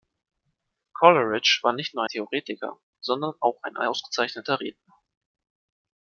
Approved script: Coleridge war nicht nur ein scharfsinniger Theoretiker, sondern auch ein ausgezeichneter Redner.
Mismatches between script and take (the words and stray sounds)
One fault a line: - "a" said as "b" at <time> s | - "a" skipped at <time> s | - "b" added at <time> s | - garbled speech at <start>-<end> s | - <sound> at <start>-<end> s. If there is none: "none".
- "ein scharfsinniger" skipped at 2.0 s